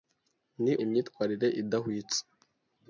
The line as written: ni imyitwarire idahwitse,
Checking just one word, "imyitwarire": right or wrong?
right